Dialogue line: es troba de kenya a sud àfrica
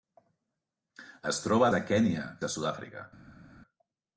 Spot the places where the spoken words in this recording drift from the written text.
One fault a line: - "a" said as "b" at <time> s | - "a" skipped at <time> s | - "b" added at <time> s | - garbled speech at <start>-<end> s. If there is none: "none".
none